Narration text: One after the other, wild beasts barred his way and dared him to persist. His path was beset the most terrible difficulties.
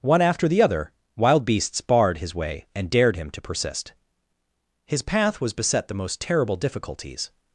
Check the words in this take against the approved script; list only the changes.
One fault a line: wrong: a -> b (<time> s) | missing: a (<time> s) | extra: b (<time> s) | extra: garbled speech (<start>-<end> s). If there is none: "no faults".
no faults